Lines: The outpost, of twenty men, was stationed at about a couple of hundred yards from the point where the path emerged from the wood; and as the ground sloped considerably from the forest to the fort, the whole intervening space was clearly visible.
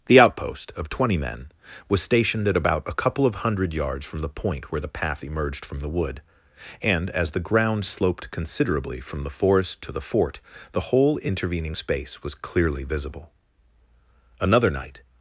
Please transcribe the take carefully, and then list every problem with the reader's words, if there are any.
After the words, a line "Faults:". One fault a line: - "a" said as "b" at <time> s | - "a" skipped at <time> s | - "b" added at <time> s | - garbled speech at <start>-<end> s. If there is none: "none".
The outpost, of twenty men, was stationed at about a couple of hundred yards from the point where the path emerged from the wood; and as the ground sloped considerably from the forest to the fort, the whole intervening space was clearly visible. Another night
Faults:
- "Another night" added at 14.4 s